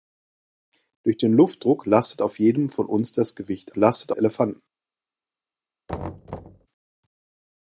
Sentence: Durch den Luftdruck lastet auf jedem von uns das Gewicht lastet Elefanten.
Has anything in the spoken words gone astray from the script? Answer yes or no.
no